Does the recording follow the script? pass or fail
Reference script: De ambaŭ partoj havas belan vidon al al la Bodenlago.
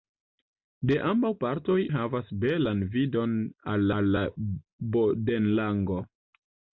pass